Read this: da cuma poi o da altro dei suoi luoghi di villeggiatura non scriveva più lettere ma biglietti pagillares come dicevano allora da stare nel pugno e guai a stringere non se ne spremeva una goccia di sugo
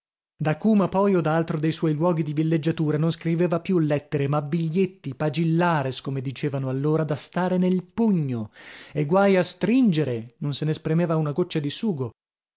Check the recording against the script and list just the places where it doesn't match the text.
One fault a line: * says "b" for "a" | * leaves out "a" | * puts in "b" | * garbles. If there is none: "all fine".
all fine